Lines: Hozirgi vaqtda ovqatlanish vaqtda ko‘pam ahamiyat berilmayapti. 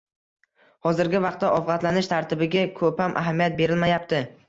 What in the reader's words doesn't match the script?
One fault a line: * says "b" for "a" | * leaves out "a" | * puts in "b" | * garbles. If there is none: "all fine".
* says "tartibiga" for "vaqtda"